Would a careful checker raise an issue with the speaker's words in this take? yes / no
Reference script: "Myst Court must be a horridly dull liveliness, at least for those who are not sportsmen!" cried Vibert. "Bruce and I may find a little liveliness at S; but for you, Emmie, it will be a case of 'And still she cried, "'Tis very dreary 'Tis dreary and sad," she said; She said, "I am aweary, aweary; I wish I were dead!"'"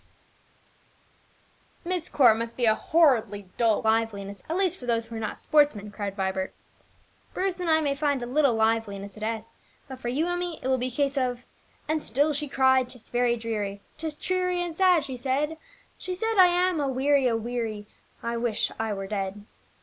no